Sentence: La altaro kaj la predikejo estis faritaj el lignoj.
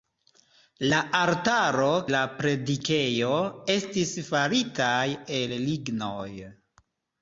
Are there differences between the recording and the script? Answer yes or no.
yes